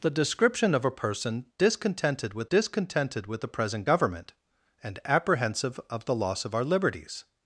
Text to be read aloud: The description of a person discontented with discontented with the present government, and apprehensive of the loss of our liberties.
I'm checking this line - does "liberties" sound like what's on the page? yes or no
yes